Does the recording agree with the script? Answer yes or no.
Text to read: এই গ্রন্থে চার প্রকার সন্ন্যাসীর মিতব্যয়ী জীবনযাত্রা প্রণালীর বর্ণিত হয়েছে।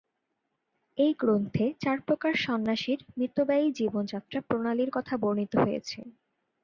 no